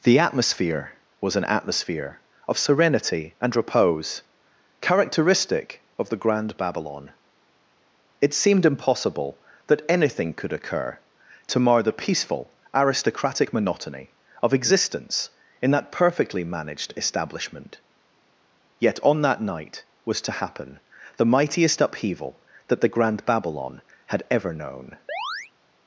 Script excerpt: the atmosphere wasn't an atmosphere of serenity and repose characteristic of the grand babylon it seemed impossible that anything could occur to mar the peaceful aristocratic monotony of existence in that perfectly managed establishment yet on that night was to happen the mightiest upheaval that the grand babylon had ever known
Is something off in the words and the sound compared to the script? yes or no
yes